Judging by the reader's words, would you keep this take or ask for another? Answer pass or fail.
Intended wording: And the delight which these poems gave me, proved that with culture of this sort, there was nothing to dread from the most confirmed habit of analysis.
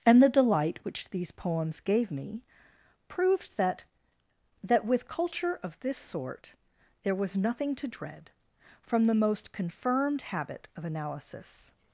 fail